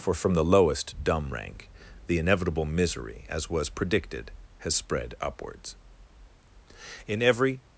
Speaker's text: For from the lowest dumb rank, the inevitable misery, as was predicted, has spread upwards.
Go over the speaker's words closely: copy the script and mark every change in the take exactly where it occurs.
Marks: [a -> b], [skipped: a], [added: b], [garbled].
For from the lowest dumb rank, the inevitable misery, as was predicted, has spread upwards. [added: In every]